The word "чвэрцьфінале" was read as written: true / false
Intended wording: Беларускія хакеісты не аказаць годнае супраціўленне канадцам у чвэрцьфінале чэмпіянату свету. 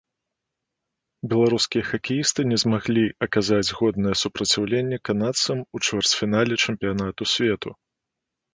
true